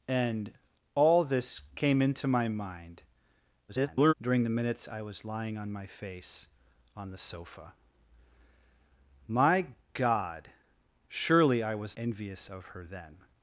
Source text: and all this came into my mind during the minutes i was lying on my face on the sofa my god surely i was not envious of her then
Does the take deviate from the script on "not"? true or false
true